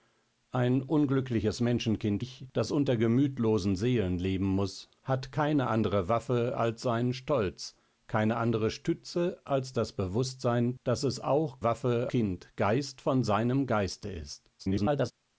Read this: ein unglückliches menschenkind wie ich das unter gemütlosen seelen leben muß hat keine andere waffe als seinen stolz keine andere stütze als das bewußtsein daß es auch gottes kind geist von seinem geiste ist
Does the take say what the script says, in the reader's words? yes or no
no